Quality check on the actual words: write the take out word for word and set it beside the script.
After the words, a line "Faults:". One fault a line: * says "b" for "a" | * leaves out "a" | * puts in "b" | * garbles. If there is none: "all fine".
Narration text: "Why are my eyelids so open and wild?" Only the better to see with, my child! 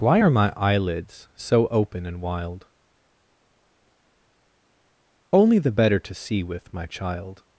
"Why are my eyelids so open and wild?" Only the better to see with, my child!
Faults:
all fine